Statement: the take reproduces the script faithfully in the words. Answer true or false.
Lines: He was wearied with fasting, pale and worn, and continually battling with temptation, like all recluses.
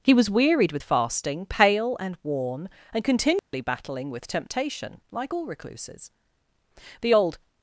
false